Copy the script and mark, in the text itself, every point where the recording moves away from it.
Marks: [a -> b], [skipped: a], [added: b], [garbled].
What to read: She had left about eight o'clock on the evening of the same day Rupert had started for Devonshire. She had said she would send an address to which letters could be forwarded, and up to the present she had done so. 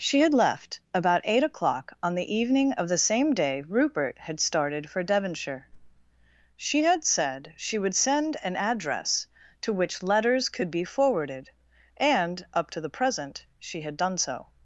She had left about eight o'clock on the evening of the same day Rupert had started for Devonshire. She had said she would send an address to which letters could be forwarded, and up to the present she had done so.